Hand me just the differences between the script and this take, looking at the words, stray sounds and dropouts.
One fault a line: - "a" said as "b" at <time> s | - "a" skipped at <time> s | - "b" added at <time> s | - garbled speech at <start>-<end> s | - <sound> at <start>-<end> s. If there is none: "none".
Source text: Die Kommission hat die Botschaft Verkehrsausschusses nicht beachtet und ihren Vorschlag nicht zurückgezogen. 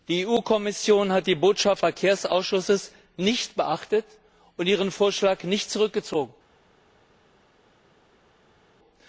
none